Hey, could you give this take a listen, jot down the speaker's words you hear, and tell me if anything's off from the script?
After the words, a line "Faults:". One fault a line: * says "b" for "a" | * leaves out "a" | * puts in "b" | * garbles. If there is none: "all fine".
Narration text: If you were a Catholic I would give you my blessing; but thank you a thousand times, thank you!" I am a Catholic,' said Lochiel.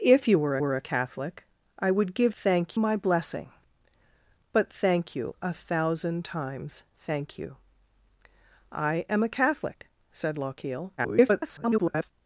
If you were were a Catholic I would give thank my blessing; but thank you a thousand times, thank you!" I am a Catholic,' said Lochiel. [garbled]
Faults:
* puts in "were"
* says "thank" for "you"
* garbles